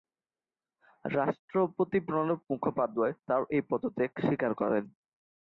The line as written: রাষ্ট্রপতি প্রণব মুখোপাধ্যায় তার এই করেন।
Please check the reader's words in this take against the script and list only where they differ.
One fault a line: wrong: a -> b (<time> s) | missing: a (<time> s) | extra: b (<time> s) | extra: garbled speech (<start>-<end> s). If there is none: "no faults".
extra: পদত্যাগ স্বীকার (3.7 s)